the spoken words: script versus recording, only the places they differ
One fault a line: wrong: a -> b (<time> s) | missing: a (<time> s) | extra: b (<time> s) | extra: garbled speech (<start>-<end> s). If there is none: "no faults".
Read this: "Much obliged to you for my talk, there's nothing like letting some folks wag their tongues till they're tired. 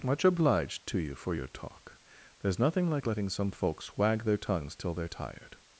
wrong: my -> your (1.3 s)